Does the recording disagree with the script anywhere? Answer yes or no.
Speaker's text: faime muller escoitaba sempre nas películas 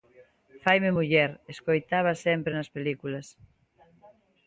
no